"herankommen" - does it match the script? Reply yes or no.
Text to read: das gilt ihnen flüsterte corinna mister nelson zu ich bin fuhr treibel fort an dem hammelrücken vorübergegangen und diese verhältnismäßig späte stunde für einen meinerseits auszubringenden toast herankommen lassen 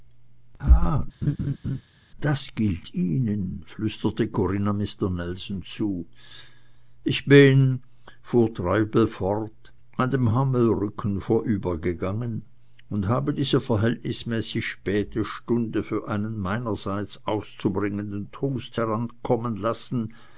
yes